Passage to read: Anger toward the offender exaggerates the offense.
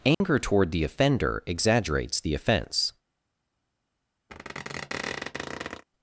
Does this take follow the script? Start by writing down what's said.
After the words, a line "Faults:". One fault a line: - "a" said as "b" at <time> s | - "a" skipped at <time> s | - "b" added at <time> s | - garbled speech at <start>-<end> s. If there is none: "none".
Anger toward the offender exaggerates the offense.
Faults:
none